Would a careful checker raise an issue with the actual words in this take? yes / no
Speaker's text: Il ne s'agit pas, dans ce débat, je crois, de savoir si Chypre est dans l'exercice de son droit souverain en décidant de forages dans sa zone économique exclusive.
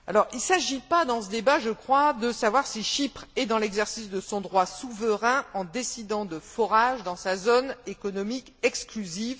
no